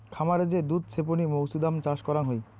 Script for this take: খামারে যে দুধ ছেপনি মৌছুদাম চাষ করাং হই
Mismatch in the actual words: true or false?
false